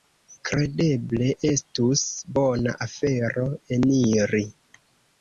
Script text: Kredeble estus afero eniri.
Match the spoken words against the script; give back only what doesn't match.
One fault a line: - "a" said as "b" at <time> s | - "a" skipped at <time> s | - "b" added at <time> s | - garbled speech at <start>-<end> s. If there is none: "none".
- "bona" added at 2.4 s